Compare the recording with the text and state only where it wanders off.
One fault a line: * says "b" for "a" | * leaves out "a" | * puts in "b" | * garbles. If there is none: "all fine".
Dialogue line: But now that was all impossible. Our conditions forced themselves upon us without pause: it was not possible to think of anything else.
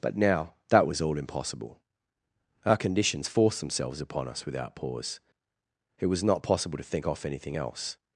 * says "off" for "of"